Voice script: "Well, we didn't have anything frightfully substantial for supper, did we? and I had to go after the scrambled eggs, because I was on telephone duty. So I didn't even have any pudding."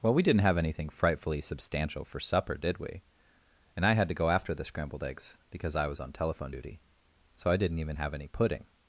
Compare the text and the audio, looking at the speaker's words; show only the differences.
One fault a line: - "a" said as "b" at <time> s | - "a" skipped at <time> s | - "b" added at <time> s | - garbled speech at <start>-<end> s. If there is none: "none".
none